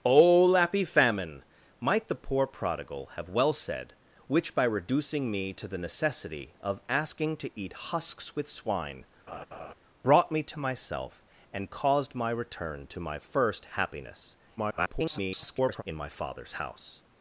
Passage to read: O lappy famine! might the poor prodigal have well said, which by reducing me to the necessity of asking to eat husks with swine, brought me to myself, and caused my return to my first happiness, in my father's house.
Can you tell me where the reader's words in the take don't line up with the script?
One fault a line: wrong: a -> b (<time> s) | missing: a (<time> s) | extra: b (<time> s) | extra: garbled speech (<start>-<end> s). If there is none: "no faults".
extra: garbled speech (14.6-15.8 s)